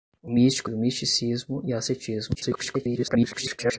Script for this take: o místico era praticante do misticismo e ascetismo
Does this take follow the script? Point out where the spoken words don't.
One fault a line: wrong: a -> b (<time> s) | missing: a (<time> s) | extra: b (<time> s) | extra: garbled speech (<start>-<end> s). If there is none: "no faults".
missing: era praticante (0.7 s)
extra: garbled speech (2.3-3.8 s)